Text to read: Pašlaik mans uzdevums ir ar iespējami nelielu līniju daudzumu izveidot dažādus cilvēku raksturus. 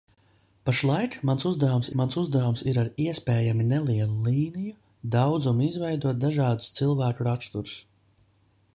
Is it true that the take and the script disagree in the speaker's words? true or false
true